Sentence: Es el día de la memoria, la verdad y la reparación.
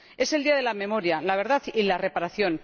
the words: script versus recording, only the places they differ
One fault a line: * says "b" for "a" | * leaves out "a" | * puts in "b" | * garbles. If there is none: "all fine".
all fine